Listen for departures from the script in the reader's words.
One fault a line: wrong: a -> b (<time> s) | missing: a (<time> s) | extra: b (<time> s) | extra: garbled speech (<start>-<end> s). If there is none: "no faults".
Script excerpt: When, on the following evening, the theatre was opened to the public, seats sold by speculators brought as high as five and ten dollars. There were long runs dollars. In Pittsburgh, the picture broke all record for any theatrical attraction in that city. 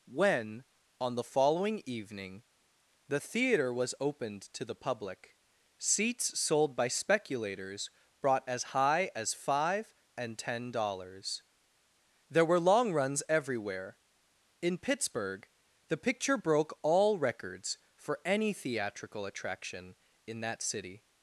wrong: dollars -> everywhere (13.3 s)
wrong: record -> records (17.2 s)